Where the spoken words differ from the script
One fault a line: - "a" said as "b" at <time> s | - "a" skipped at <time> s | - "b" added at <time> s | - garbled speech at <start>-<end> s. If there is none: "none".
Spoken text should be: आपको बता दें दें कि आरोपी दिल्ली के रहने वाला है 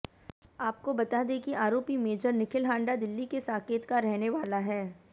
- "दें" skipped at 1.4 s
- "मेजर निखिल हांडा" added at 2.0 s
- "साकेत का" added at 3.4 s